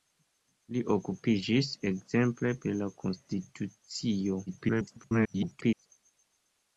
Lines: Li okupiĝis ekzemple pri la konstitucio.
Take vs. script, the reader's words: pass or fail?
fail